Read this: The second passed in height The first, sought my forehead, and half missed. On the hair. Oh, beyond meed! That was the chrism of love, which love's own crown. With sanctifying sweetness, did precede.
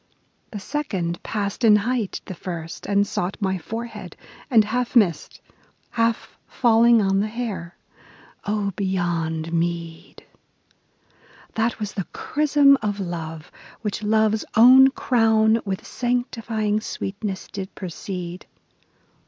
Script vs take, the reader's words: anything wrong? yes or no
yes